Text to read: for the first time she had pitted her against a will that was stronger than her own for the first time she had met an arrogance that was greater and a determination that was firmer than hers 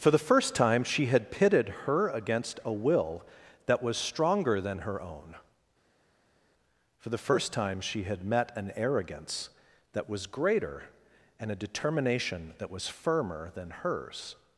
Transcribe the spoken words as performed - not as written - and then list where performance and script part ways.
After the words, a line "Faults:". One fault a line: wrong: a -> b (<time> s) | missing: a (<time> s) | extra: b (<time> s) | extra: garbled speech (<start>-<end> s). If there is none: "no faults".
for the first time she had pitted her against a will that was stronger than her own for the first time she had met an arrogance that was greater and a determination that was firmer than hers
Faults:
no faults